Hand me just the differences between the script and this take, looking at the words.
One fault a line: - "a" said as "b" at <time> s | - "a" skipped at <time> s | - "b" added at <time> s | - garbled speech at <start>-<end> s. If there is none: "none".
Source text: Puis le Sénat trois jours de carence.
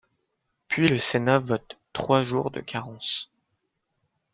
- "vote" added at 1.4 s